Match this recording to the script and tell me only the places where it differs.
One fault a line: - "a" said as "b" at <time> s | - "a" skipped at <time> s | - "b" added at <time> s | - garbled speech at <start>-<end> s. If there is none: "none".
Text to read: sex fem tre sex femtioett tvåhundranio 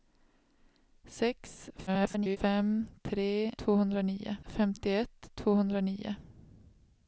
- garbled speech at 1.9-2.4 s
- "sex" said as "tvåhundranio" at 3.6 s